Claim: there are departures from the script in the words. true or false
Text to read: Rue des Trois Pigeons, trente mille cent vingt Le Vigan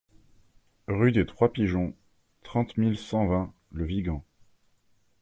false